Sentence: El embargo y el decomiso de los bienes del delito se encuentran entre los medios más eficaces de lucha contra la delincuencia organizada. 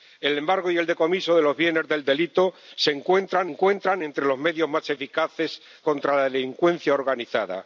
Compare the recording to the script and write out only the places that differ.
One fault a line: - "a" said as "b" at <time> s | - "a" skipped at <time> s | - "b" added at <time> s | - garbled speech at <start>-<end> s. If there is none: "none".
- "encuentran" added at 3.4 s
- "de lucha" skipped at 5.6 s